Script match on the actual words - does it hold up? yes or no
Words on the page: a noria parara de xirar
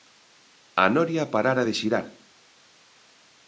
yes